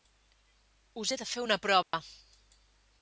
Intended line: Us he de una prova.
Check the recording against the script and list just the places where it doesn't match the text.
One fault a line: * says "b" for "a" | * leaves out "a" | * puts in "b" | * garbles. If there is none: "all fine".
* puts in "fer"